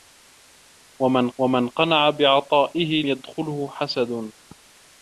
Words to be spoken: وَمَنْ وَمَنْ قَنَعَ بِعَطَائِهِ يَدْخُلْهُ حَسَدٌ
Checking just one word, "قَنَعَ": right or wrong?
right